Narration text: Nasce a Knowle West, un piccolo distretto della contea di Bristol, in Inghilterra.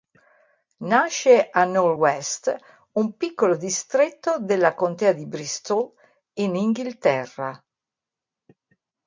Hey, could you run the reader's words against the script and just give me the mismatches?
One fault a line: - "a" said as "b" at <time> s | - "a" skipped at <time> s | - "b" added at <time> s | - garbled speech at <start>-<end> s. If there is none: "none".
none